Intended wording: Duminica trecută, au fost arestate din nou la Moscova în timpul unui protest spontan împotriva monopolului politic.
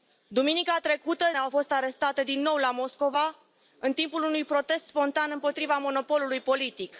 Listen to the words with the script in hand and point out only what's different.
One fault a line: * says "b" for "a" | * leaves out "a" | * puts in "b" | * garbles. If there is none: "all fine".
all fine